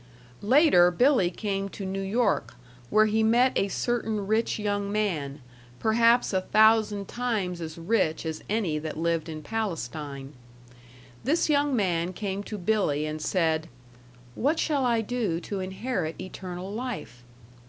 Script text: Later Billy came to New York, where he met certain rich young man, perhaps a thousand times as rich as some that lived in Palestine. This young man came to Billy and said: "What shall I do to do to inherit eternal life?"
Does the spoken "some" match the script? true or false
false